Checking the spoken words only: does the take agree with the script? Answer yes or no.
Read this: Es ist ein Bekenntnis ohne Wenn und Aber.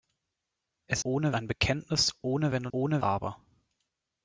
no